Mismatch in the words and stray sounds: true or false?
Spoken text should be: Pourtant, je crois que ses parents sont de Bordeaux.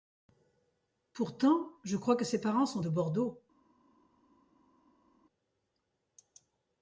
false